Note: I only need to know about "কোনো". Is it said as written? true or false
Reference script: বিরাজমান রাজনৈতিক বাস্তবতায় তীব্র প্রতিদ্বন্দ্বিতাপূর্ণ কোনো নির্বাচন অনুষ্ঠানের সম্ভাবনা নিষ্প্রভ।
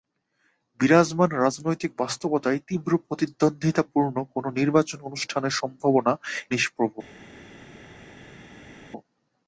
true